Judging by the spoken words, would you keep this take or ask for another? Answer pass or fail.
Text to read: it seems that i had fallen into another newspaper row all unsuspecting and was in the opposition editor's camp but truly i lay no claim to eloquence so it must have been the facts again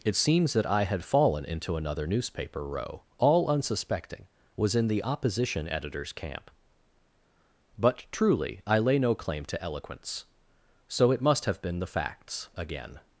fail